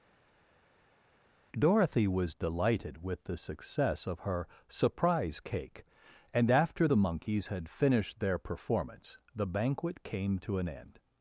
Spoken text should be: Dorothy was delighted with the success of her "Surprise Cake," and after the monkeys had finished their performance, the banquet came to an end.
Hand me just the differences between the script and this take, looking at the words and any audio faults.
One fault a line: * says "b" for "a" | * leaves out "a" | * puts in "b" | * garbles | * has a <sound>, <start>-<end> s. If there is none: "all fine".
all fine